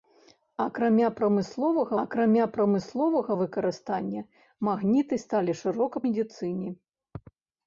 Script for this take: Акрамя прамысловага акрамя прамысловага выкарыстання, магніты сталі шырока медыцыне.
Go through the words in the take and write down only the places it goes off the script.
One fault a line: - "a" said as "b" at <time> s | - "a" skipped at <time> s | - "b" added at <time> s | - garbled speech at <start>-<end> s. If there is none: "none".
none